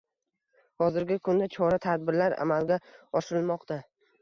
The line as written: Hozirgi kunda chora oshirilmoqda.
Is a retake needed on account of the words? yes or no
yes